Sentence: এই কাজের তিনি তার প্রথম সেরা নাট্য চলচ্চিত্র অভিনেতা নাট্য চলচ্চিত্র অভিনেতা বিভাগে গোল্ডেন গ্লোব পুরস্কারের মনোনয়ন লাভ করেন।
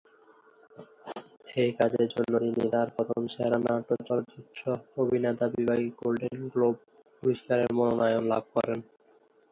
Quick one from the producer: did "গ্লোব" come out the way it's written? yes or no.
yes